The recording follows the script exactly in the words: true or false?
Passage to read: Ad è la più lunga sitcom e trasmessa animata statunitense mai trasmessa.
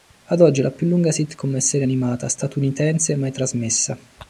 false